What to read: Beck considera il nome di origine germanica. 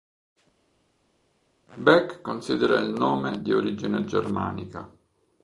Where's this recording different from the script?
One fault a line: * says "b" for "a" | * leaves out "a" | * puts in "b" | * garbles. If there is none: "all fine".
all fine